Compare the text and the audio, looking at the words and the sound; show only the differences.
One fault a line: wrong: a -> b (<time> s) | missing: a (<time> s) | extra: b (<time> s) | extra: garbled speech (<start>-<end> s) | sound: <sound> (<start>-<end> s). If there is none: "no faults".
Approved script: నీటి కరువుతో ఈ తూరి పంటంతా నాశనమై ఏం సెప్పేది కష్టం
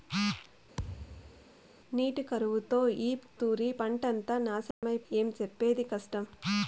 sound: thud (0.8-1.5 s)
sound: dropout (4.7-4.8 s)